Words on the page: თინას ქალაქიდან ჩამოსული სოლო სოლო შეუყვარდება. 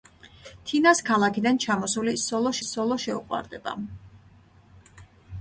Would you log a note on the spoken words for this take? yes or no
no